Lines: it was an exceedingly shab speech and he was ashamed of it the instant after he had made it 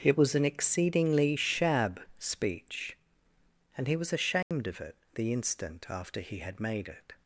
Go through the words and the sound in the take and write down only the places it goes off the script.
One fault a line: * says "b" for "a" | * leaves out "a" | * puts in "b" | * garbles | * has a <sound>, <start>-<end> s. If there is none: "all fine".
* has a dropout, 4.4-4.5 s